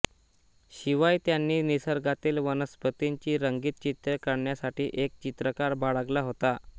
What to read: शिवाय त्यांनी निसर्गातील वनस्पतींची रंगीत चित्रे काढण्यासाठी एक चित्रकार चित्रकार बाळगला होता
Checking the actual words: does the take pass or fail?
fail